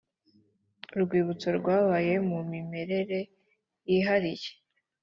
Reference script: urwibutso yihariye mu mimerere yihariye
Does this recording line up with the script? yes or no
no